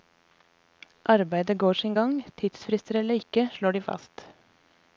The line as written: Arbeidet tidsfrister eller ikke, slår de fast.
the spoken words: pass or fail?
fail